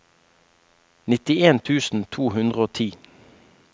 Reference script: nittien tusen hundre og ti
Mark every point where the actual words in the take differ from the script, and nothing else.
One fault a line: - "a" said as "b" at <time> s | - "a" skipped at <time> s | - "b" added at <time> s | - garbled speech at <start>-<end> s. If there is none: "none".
- "to" added at 2.2 s